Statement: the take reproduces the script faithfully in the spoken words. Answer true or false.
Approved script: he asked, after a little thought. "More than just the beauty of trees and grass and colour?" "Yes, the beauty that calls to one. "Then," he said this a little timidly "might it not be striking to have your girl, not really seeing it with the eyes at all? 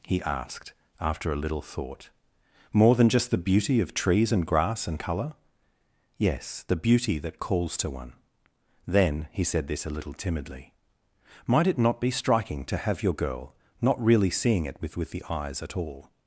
false